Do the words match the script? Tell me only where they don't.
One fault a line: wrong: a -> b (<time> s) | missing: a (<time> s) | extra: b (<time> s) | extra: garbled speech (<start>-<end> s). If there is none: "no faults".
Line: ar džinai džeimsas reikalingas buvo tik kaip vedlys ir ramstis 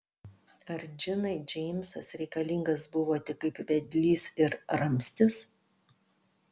no faults